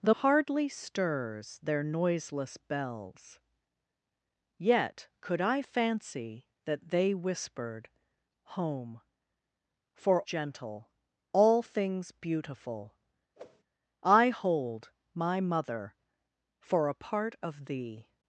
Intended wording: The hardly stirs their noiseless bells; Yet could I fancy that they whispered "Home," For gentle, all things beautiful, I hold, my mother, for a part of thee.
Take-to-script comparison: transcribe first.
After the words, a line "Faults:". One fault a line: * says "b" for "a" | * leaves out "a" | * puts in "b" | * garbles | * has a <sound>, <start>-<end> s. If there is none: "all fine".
The hardly stirs their noiseless bells; Yet could I fancy that they whispered "Home," For gentle, all things beautiful, I hold, my mother, for a part of thee.
Faults:
* has a whoosh, 13.4-13.6 s